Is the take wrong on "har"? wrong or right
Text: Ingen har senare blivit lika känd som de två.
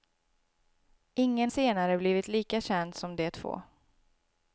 wrong